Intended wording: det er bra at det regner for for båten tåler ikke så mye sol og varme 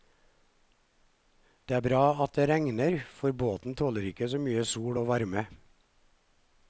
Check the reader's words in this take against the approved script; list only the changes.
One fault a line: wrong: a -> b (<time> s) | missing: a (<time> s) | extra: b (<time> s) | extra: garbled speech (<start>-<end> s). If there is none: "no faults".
missing: for (3.3 s)